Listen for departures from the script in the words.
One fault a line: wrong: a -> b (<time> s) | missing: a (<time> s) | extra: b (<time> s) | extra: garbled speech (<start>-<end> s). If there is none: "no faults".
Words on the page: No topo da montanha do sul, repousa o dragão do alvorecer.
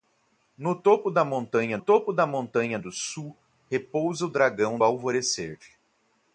extra: topo da montanha (1.8 s)
missing: do (4.8 s)